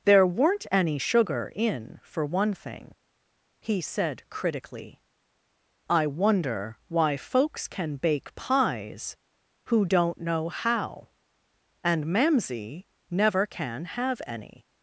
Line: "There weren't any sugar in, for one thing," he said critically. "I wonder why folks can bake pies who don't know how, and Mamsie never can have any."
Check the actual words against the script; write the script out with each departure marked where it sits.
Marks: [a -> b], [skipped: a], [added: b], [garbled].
"There weren't any sugar in, for one thing," he said critically. "I wonder why folks can bake pies who don't know how, and Mamsie never can have any."